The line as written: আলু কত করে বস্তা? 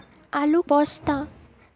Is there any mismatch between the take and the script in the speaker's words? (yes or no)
yes